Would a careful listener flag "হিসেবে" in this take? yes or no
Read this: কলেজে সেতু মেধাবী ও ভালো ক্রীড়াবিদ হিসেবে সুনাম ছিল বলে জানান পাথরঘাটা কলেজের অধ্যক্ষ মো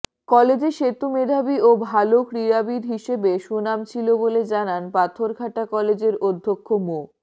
no